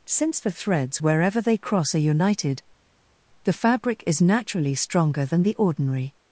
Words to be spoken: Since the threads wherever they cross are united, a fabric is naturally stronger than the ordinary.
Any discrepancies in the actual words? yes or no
yes